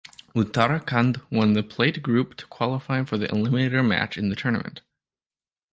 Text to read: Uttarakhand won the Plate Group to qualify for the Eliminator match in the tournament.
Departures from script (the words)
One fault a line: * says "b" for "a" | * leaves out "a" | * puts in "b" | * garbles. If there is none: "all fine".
all fine